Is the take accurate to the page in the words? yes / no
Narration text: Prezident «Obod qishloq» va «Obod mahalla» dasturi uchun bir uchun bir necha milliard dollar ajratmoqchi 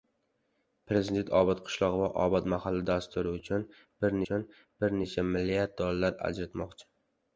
yes